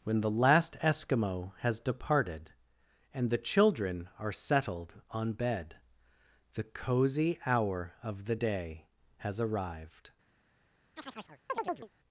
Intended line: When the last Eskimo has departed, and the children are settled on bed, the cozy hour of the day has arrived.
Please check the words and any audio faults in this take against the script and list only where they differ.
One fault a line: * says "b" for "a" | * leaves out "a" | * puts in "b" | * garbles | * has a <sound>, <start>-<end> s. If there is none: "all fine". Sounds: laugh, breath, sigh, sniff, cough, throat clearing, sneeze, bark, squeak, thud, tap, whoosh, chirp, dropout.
* has a chirp, 11.0-11.9 s